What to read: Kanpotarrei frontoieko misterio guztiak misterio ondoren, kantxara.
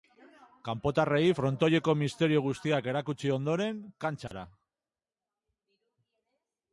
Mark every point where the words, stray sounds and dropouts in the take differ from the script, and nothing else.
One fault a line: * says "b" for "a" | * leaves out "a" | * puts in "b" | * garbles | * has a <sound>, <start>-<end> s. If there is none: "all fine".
* says "erakutsi" for "misterio"
* has a dropout, 4.3-4.3 s